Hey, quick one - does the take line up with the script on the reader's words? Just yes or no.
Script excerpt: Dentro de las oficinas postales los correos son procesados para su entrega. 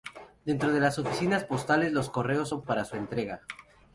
no